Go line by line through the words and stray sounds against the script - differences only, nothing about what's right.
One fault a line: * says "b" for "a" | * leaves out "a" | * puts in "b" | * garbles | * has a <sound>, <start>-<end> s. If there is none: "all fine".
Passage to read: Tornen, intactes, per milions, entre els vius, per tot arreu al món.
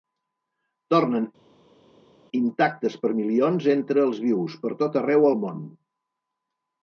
all fine